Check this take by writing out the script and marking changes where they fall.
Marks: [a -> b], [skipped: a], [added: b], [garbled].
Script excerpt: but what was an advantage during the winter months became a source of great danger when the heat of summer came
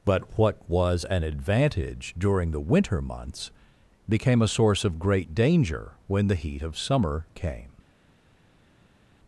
but what was an advantage during the winter months became a source of great danger when the heat of summer came